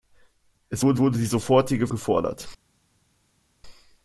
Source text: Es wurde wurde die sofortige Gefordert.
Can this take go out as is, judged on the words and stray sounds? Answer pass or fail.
pass